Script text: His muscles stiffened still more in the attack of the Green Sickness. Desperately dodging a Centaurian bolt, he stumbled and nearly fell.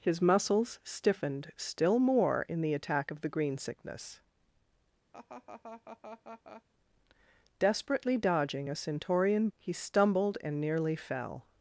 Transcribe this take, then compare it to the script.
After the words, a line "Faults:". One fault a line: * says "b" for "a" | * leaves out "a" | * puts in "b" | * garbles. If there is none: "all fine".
His muscles stiffened still more in the attack of the Green Sickness. Desperately dodging a Centaurian he stumbled and nearly fell.
Faults:
* leaves out "bolt"